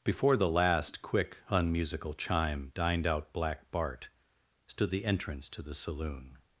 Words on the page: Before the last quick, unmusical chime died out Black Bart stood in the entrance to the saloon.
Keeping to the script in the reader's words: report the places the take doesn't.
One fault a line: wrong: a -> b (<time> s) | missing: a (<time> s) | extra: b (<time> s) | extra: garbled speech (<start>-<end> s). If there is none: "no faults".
wrong: died -> dined (2.7 s)
missing: in (4.9 s)